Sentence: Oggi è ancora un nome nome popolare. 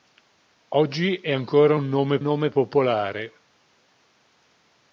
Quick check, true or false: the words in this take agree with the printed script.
true